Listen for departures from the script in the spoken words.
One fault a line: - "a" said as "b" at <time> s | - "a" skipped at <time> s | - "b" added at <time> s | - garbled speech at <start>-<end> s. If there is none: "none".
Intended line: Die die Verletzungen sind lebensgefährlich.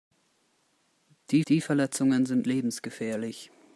none